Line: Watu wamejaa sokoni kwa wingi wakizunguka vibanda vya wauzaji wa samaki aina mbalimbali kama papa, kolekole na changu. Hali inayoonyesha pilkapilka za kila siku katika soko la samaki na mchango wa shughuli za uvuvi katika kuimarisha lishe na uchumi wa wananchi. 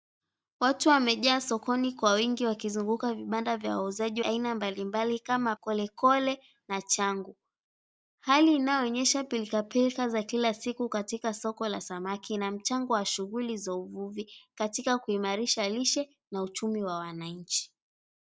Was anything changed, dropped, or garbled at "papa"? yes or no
yes